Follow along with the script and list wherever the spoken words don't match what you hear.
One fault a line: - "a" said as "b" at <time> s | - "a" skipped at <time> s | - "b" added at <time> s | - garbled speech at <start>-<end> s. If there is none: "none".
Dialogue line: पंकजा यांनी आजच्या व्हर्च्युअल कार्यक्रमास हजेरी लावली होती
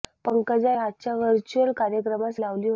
- "यांनी" skipped at 0.7 s
- "हजेरी" skipped at 2.4 s